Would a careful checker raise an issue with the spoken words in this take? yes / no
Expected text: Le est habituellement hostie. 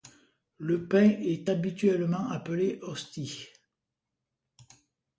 yes